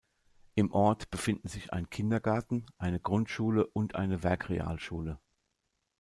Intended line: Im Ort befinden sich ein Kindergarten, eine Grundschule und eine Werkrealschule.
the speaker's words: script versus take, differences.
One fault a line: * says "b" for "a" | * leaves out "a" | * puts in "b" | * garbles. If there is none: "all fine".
all fine